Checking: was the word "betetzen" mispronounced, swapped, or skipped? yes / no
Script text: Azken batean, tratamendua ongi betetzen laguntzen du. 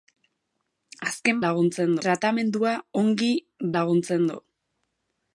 yes